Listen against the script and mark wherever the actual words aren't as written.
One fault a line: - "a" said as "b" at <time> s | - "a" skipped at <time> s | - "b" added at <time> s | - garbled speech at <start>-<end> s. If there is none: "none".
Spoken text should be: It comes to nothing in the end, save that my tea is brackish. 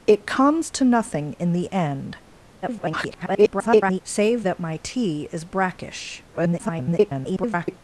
- garbled speech at 2.6-4.0 s
- garbled speech at 6.3-7.8 s